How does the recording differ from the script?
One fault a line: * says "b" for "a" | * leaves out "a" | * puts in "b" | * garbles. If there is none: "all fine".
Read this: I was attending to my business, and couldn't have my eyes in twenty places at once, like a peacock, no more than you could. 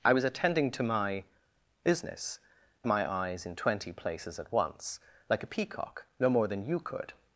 * leaves out "and couldn't have"